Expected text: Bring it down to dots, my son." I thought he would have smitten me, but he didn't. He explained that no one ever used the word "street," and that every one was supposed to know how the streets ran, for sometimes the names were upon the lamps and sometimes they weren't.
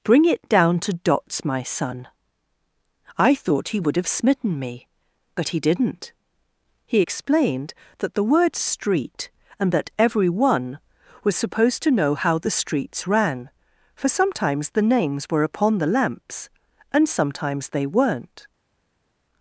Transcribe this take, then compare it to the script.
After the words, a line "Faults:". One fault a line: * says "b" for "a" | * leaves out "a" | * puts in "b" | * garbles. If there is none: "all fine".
Bring it down to dots, my son." I thought he would have smitten me, but he didn't. He explained that the word "street," and that every one was supposed to know how the streets ran, for sometimes the names were upon the lamps and sometimes they weren't.
Faults:
* leaves out "no one ever used"